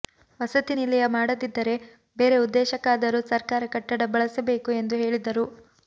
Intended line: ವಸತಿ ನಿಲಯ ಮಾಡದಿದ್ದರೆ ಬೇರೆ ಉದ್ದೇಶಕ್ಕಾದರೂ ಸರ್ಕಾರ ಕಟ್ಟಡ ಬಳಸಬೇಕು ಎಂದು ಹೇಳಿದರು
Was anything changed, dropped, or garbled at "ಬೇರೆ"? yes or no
no